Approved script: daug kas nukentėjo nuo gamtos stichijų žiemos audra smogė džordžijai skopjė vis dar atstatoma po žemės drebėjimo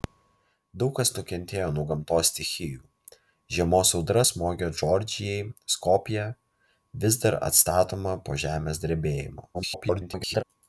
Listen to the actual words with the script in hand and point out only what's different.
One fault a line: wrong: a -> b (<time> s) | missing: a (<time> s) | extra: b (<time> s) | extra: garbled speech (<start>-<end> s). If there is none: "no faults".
extra: garbled speech (9.5-10.4 s)